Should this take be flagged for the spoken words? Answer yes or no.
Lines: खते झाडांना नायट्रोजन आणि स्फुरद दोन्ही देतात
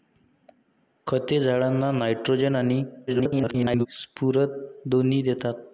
yes